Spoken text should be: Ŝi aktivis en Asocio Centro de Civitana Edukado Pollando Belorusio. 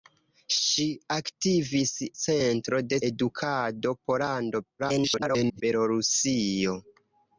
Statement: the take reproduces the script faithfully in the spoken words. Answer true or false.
false